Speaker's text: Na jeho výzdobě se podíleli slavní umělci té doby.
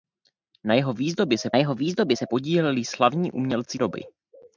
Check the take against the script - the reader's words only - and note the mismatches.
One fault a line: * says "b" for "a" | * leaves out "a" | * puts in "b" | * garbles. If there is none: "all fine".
* puts in "jeho výzdobě se"
* leaves out "té"